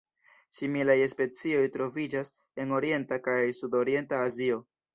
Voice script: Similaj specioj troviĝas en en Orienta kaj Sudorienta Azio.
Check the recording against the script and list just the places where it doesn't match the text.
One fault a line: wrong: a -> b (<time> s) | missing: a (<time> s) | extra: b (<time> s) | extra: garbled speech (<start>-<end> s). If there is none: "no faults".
missing: en (2.8 s)